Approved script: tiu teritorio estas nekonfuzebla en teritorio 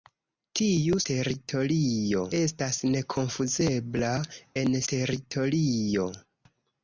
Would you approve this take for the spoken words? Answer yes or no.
yes